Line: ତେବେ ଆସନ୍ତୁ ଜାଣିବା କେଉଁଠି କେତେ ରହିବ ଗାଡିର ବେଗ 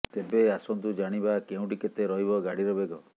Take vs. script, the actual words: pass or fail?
pass